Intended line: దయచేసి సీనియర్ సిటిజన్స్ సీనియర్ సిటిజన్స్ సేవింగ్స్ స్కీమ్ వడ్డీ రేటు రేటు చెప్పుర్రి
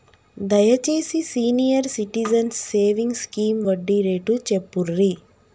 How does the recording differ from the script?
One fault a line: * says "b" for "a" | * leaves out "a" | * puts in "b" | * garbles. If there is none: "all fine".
* leaves out "సీనియర్ సిటిజన్స్"
* leaves out "రేటు"